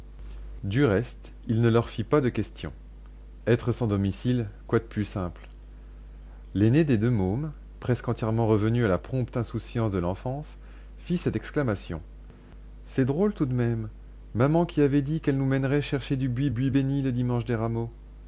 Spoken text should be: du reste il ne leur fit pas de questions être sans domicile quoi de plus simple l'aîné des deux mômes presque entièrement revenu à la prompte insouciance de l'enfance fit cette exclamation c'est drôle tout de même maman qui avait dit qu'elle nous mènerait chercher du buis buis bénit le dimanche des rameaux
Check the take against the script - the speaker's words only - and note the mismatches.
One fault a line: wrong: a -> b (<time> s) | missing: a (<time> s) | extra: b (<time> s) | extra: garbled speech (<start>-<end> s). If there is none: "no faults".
no faults